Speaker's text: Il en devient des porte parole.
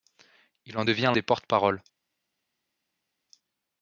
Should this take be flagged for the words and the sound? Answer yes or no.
no